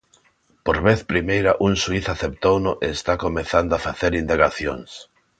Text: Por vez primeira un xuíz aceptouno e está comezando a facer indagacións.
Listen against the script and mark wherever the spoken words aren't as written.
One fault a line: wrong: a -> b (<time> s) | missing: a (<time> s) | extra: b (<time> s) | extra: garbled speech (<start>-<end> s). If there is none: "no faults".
no faults